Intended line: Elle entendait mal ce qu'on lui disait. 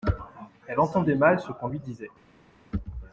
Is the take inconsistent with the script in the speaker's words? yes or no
no